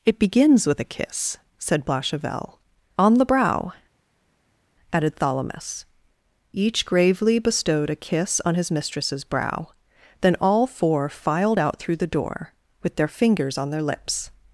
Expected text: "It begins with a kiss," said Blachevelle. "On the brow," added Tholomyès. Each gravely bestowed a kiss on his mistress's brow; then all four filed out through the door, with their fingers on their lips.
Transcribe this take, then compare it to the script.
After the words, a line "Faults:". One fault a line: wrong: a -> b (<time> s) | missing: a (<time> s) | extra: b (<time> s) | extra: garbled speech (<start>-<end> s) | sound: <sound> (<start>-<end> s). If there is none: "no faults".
"It begins with a kiss," said Blachevelle. "On the brow," added Tholomyès. Each gravely bestowed a kiss on his mistress's brow; then all four filed out through the door, with their fingers on their lips.
Faults:
no faults